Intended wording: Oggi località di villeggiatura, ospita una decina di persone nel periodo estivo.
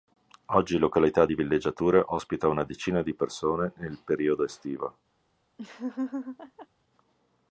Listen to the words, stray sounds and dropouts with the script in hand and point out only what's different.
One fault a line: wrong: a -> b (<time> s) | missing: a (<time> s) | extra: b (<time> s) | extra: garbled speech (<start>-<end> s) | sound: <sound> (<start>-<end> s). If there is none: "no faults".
sound: laugh (5.6-6.7 s)